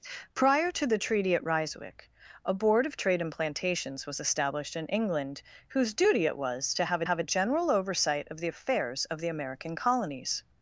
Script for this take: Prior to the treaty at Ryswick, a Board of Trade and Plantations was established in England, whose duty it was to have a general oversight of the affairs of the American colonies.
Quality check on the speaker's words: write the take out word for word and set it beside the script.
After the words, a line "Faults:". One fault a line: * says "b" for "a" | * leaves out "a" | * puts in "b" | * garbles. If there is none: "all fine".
Prior to the treaty at Ryswick, a Board of Trade and Plantations was established in England, whose duty it was to have have a general oversight of the affairs of the American colonies.
Faults:
* puts in "have"